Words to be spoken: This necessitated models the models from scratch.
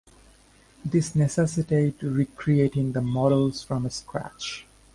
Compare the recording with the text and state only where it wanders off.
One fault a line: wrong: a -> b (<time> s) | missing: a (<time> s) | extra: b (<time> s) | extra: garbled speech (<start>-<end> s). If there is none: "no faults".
wrong: models -> recreating (2.0 s)